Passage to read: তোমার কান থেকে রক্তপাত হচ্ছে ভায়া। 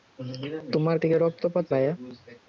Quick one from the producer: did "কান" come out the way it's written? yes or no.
no